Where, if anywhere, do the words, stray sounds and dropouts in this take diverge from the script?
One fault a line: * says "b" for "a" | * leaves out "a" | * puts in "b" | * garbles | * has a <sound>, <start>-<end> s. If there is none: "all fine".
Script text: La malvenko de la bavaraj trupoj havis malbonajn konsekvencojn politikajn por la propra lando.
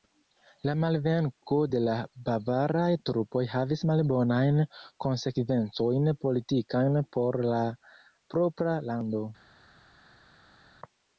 all fine